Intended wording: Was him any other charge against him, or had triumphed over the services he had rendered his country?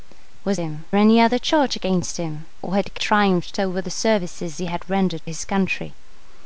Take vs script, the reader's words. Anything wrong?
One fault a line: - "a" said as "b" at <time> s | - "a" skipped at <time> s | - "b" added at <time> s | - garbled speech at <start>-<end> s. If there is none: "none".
none